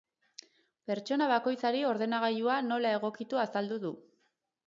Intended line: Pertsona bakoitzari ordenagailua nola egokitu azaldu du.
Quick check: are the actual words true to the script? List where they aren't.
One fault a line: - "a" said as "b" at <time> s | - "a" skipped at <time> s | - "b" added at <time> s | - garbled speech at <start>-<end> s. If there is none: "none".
none